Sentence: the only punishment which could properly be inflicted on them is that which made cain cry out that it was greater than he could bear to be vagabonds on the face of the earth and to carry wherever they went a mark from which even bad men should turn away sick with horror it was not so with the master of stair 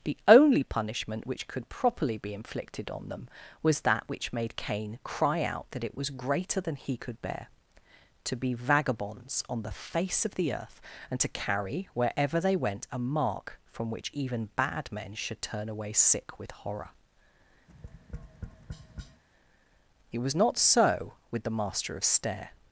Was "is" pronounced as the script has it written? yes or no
no